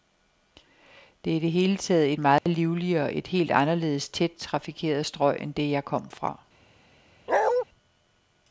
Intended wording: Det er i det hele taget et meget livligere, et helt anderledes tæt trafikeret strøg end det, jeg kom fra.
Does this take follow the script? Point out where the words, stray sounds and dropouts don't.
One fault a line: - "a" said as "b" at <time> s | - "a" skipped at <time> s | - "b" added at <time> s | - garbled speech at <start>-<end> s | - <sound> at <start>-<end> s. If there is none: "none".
- dropout at 2.4-2.5 s
- bark at 7.3-7.6 s